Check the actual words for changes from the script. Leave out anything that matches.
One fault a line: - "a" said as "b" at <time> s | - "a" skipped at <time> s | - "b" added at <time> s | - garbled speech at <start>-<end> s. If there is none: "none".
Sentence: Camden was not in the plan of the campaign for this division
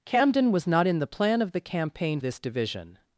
- "for" skipped at 2.2 s